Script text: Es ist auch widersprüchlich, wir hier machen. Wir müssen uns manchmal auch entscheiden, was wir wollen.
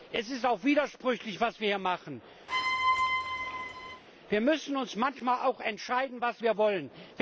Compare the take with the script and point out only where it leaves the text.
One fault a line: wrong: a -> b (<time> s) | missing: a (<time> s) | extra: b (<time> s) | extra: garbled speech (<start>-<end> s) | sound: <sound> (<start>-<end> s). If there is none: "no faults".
extra: was (1.4 s)
sound: squeak (2.5-4.0 s)